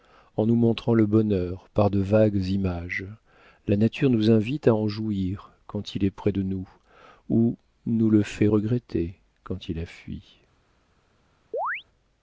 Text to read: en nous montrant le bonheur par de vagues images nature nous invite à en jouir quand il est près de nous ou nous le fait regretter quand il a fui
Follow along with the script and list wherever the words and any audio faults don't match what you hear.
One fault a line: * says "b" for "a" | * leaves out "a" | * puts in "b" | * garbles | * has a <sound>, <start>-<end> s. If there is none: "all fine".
* puts in "la"
* has a chirp, 11.5-11.8 s